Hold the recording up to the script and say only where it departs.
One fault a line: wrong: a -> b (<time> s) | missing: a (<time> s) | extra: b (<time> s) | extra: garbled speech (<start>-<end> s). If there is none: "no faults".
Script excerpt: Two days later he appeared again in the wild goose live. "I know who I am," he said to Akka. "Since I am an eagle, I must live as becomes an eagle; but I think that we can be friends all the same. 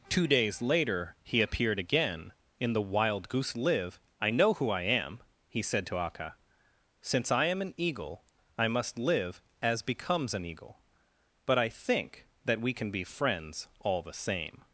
no faults